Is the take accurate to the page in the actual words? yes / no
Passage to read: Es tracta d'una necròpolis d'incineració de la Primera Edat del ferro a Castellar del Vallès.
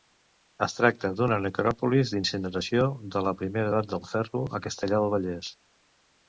yes